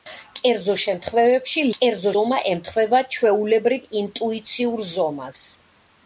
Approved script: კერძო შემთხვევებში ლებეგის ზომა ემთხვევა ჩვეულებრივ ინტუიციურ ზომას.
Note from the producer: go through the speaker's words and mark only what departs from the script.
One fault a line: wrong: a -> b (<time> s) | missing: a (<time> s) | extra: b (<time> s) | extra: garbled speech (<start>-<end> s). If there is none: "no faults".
wrong: ლებეგის -> კერძო (1.7 s)